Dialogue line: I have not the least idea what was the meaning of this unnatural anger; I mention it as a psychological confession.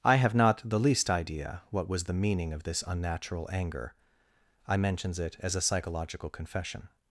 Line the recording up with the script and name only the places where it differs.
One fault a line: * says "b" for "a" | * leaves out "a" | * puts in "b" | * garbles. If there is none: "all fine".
* says "mentions" for "mention"